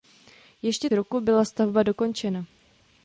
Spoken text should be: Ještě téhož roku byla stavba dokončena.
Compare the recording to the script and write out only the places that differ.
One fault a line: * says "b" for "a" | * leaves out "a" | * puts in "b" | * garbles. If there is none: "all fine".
* leaves out "téhož"